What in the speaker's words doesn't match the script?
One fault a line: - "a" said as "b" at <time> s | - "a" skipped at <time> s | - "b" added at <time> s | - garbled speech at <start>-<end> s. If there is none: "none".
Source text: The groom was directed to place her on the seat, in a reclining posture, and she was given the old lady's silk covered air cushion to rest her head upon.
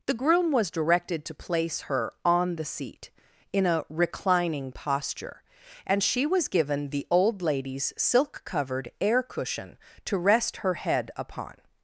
none